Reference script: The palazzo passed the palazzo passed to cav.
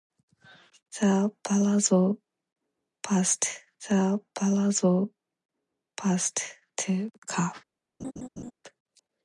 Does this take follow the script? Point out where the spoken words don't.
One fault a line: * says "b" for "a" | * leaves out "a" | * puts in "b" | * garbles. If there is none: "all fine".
all fine